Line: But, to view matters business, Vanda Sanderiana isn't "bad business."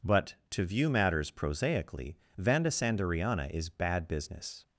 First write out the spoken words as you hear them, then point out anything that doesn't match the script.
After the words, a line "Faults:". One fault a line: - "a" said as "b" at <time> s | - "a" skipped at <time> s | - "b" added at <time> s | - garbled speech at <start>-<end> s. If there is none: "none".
But, to view matters prosaically, Vanda Sanderiana is "bad business."
Faults:
- "business" said as "prosaically" at 1.3 s
- "isn't" said as "is" at 3.5 s